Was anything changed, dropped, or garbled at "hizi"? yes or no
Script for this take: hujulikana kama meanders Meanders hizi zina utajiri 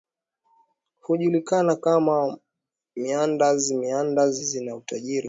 yes